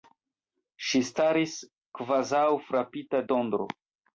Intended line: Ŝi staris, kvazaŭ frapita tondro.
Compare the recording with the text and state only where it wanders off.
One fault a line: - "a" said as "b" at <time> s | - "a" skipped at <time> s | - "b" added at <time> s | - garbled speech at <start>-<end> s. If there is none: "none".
none